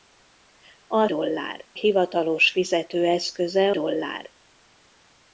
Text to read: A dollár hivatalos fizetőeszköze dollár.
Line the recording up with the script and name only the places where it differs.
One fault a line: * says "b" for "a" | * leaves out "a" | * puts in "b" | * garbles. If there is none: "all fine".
all fine